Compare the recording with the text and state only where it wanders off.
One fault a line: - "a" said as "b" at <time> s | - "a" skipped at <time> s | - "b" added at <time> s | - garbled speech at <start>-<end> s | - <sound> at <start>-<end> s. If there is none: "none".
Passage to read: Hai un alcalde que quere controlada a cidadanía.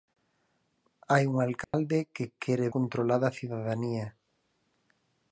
- dropout at 1.6-1.7 s